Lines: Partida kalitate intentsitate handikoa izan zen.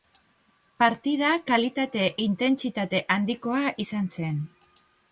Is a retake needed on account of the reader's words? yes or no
no